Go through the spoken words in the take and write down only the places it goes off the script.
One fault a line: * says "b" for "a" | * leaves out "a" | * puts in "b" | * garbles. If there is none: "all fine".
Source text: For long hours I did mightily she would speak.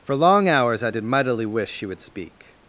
* puts in "wish"